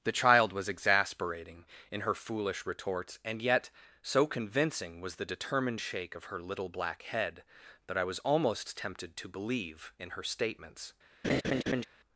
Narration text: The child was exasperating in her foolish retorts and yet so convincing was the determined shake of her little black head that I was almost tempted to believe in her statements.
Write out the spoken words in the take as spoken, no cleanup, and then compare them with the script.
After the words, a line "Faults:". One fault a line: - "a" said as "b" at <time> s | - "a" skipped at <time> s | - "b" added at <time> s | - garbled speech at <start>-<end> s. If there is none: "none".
The child was exasperating in her foolish retorts and yet so convincing was the determined shake of her little black head that I was almost tempted to believe in her statements.
Faults:
none